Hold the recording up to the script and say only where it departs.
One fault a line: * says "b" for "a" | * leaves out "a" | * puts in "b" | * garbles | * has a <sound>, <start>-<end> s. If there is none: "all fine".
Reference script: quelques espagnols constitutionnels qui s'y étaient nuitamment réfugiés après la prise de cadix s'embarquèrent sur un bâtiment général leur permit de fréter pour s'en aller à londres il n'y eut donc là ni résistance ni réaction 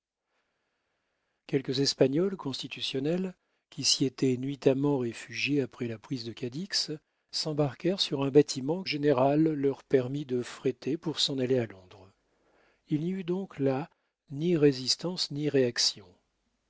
all fine